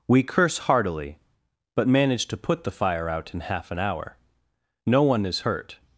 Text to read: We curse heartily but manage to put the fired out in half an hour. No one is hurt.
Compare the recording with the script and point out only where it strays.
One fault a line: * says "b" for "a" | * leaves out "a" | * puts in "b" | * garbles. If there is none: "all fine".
* says "fire" for "fired"